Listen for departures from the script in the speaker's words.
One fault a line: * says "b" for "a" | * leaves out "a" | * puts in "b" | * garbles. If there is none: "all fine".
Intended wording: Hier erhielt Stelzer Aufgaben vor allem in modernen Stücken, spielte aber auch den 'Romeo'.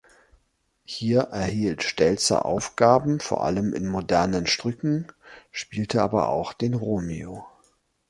all fine